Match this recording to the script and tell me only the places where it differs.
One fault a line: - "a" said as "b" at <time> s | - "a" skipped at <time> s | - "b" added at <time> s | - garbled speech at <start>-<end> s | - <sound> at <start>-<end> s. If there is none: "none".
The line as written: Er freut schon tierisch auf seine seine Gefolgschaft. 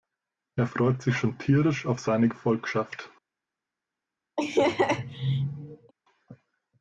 - "sich" added at 1.0 s
- "seine" skipped at 2.3 s
- laugh at 4.4-5.9 s